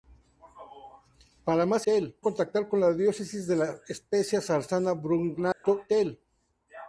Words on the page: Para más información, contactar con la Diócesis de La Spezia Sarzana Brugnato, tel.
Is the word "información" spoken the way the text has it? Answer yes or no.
no